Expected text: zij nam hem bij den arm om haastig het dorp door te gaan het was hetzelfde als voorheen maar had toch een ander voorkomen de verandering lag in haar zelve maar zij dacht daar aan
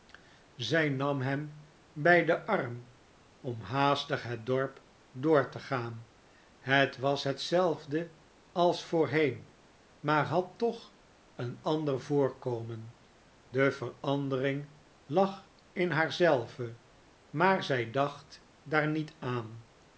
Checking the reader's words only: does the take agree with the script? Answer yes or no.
no